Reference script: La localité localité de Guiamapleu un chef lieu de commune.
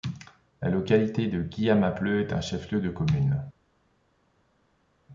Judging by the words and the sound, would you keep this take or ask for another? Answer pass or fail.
fail